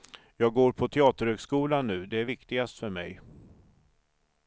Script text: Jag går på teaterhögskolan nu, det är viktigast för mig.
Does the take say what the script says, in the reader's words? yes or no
yes